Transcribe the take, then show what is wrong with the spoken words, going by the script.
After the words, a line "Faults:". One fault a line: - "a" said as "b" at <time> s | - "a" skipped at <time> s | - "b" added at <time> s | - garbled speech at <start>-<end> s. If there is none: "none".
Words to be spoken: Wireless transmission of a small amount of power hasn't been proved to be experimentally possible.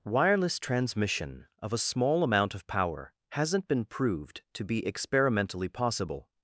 Wireless transmission of a small amount of power hasn't been proved to be experimentally possible.
Faults:
none